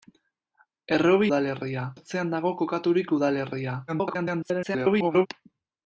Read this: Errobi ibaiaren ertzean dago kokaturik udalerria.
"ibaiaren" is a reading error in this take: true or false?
true